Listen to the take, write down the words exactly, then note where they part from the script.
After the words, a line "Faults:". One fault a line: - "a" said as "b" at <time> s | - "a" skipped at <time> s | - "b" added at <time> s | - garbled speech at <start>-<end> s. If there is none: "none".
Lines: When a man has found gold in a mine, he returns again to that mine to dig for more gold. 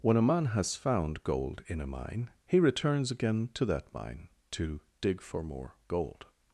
When a man has found gold in a mine, he returns again to that mine to dig for more gold.
Faults:
none